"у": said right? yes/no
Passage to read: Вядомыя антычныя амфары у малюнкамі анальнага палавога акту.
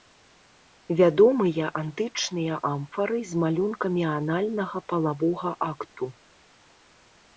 no